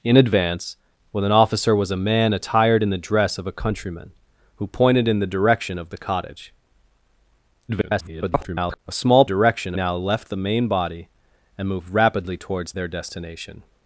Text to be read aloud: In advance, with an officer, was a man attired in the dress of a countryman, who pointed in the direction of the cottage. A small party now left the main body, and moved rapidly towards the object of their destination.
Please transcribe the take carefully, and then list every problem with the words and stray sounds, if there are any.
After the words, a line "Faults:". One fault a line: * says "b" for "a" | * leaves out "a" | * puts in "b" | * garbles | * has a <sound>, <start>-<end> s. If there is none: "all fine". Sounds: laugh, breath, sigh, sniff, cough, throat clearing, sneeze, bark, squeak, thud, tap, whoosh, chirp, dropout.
In advance, with an officer, was a man attired in the dress of a countryman, who pointed in the direction of the cottage. [garbled] A small direction now left the main body, and moved rapidly towards their destination.
Faults:
* garbles
* says "direction" for "party"
* leaves out "the object of"